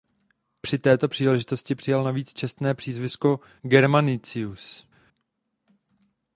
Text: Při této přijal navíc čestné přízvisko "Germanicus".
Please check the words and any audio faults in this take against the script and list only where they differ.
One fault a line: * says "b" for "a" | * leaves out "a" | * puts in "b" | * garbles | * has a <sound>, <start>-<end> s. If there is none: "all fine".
* puts in "příležitosti"